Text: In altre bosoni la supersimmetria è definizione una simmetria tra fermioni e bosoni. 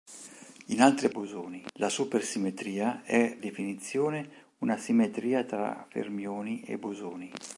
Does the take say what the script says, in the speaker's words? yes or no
yes